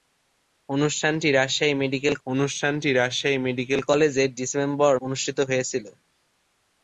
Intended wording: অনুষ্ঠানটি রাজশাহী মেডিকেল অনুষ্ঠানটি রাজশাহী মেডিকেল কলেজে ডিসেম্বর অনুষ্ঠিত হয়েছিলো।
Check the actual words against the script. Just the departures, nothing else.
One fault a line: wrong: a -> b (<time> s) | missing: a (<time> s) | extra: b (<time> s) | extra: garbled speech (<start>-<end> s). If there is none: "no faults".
no faults